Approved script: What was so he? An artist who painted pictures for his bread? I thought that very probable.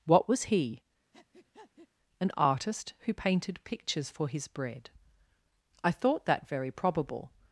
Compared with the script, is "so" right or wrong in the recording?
wrong